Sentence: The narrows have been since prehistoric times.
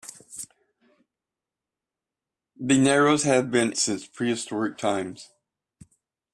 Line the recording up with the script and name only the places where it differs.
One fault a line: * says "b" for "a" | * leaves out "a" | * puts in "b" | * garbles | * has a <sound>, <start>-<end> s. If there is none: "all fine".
all fine